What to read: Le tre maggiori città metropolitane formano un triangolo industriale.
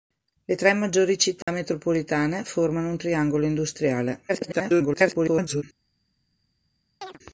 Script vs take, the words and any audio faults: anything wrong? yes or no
yes